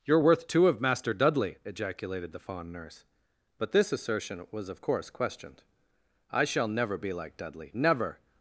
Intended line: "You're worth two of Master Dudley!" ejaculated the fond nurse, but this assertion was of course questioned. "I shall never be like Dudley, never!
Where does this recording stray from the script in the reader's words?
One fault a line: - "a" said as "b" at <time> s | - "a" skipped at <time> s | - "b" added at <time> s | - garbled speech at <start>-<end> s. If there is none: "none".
none